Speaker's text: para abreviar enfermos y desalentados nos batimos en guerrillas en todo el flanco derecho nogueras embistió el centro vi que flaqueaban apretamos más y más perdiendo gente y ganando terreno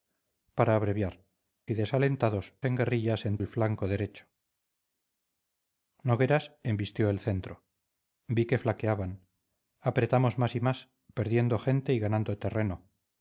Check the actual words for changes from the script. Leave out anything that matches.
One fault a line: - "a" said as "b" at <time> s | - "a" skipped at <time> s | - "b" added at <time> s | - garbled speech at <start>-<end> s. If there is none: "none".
- "enfermos" skipped at 1.2 s
- "nos batimos" skipped at 2.5 s
- "todo" skipped at 3.4 s